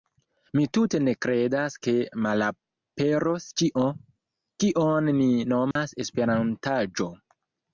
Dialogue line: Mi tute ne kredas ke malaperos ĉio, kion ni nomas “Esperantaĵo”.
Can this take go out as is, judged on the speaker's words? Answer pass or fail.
pass